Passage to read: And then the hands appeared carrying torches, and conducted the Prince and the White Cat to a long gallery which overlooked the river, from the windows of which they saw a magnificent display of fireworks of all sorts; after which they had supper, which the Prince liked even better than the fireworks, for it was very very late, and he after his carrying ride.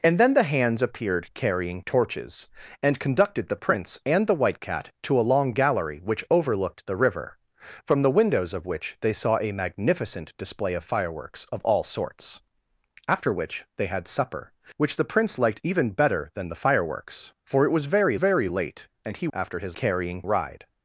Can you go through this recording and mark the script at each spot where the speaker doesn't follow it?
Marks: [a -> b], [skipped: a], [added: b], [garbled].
And then the hands appeared carrying torches, and conducted the Prince and the White Cat to a long gallery which overlooked the river, from the windows of which they saw a magnificent display of fireworks of all sorts; after which they had supper, which the Prince liked even better than the fireworks, for it was very very late, and he after his carrying ride.